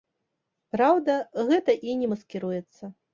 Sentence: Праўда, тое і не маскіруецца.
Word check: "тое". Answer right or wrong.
wrong